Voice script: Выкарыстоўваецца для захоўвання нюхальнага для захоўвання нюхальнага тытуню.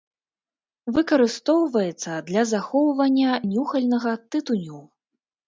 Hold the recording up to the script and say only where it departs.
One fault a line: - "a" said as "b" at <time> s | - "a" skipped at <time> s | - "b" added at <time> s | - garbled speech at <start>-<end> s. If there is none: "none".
- "для захоўвання нюхальнага" skipped at 4.2 s